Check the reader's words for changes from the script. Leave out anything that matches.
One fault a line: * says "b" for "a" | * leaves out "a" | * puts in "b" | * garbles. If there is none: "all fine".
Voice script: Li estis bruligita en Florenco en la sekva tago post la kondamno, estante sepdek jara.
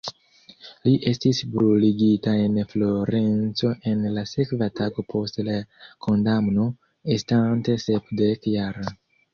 all fine